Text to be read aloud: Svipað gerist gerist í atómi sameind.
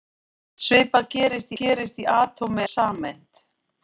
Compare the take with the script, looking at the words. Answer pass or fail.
pass